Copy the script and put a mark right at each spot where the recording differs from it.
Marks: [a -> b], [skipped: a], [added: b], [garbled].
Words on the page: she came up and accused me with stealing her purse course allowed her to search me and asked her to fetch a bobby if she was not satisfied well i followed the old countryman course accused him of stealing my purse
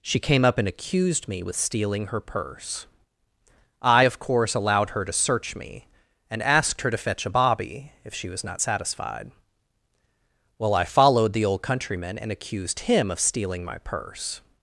she came up and accused me with stealing her purse [added: i of] course allowed her to search me and asked her to fetch a bobby if she was not satisfied well i followed the old countryman [course -> and] accused him of stealing my purse